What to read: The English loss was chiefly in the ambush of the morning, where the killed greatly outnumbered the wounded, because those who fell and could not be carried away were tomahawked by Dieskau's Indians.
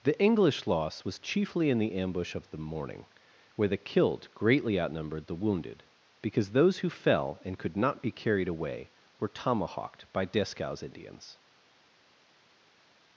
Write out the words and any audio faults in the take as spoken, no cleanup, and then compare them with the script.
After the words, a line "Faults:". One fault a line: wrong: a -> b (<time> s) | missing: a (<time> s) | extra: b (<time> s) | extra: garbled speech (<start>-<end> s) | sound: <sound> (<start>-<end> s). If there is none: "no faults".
The English loss was chiefly in the ambush of the morning, where the killed greatly outnumbered the wounded, because those who fell and could not be carried away were tomahawked by Dieskau's Indians.
Faults:
no faults